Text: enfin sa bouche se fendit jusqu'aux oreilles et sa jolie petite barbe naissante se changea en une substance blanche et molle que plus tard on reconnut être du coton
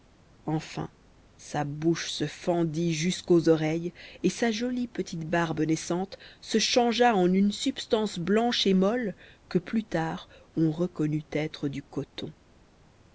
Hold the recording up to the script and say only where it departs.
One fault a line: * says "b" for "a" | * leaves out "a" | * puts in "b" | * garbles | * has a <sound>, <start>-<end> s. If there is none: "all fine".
all fine